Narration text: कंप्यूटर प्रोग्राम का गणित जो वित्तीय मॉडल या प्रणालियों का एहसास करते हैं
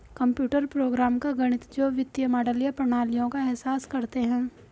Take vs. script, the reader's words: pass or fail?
pass